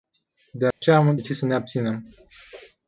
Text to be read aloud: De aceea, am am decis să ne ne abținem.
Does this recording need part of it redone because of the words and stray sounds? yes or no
yes